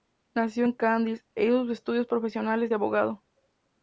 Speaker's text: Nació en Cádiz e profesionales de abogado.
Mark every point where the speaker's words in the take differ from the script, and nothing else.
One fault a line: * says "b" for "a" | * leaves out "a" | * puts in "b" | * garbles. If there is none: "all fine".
* puts in "hizo sus estudios"